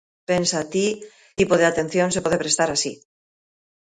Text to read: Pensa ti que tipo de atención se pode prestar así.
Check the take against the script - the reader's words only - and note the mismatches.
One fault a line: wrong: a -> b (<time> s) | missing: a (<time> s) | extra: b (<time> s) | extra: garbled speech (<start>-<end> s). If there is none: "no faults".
missing: que (0.9 s)